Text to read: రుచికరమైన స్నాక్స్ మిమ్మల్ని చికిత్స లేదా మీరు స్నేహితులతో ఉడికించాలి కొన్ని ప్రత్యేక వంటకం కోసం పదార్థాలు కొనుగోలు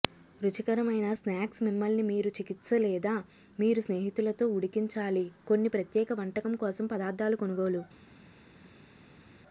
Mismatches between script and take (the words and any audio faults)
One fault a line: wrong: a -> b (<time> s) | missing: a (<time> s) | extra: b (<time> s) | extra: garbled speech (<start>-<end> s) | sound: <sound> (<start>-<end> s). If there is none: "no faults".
extra: మీరు (2.1 s)